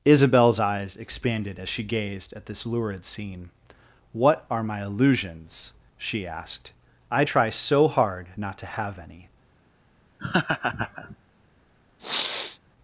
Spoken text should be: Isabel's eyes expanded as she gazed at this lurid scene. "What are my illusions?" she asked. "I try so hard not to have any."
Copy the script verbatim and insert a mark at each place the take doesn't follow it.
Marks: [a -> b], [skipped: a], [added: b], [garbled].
Isabel's eyes expanded as she gazed at this lurid scene. "What are my illusions?" she asked. "I try so hard not to have any."